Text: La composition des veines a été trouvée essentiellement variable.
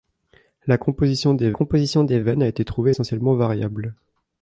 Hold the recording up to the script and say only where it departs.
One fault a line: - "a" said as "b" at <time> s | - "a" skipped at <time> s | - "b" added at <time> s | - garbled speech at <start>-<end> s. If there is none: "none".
- "composition des" added at 1.5 s